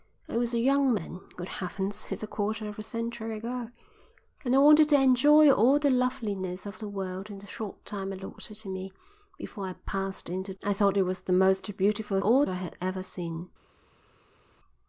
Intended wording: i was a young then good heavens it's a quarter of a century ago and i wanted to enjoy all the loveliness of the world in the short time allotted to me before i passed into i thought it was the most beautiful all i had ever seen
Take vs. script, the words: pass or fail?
pass